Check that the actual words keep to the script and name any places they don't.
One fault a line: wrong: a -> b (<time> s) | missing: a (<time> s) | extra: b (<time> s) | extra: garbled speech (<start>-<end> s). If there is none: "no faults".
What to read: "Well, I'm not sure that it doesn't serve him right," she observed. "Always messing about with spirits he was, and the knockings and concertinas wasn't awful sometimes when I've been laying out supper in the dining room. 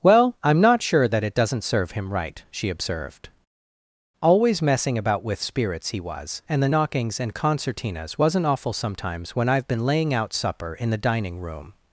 no faults